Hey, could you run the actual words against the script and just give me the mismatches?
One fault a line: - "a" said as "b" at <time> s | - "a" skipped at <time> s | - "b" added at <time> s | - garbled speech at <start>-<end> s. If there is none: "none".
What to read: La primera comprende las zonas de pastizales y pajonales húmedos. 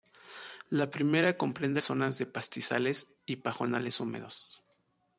- "las" skipped at 1.8 s